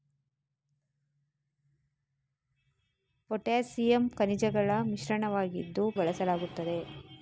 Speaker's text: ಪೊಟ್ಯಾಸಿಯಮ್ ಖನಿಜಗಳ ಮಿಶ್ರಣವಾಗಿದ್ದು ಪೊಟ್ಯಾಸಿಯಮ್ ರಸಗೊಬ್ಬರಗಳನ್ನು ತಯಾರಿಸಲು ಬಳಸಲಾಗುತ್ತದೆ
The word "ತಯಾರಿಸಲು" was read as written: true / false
false